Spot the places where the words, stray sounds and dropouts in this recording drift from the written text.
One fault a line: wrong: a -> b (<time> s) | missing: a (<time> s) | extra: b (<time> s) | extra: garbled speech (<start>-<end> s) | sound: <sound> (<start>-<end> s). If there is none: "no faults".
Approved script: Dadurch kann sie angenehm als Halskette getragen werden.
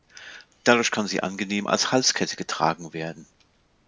no faults